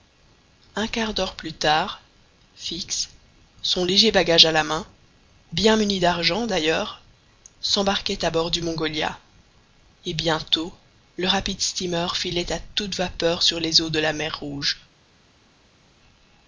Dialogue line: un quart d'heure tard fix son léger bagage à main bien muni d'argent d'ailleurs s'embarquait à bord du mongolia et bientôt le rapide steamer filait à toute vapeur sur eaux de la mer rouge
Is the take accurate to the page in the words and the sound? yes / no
no